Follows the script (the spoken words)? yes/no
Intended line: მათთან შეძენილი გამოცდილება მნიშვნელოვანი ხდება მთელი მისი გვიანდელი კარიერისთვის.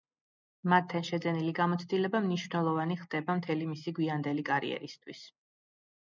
yes